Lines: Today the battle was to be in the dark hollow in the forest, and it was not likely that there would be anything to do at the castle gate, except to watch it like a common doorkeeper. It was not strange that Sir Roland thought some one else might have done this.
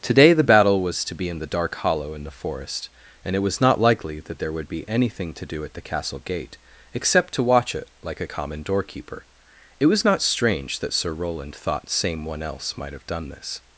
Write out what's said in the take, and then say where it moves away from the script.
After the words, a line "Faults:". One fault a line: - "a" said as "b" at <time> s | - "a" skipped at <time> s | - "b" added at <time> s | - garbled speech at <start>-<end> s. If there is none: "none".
Today the battle was to be in the dark hollow in the forest, and it was not likely that there would be anything to do at the castle gate, except to watch it like a common doorkeeper. It was not strange that Sir Roland thought same one else might have done this.
Faults:
- "some" said as "same" at 11.9 s